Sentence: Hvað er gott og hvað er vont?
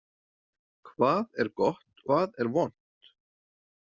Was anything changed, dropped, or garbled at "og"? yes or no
yes